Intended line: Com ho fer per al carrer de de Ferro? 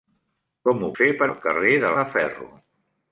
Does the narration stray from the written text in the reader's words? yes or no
no